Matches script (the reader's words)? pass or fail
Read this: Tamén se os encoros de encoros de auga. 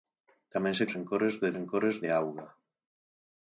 pass